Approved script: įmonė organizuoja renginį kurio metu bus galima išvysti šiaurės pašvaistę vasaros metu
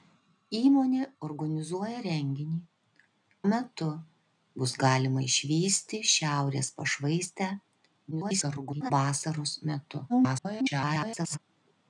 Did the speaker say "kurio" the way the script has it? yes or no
no